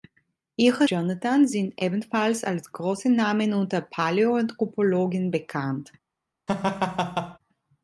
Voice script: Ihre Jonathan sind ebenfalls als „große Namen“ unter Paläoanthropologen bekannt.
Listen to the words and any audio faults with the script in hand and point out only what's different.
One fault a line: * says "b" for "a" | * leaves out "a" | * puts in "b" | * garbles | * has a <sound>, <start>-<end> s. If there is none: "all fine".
* has a laugh, 6.5-7.4 s